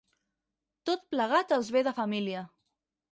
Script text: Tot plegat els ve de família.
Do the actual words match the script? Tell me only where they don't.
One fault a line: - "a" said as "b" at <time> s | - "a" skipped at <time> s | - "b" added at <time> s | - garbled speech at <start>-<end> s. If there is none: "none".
none